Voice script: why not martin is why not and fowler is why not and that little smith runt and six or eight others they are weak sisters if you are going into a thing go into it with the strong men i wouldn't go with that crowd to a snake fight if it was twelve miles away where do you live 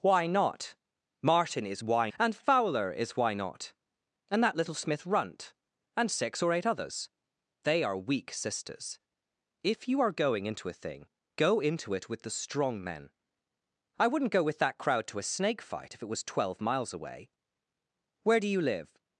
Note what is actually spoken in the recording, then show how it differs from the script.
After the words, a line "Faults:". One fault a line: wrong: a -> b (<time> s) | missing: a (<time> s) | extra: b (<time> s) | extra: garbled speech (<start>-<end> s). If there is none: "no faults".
why not martin is why and fowler is why not and that little smith runt and six or eight others they are weak sisters if you are going into a thing go into it with the strong men i wouldn't go with that crowd to a snake fight if it was twelve miles away where do you live
Faults:
missing: not (2.1 s)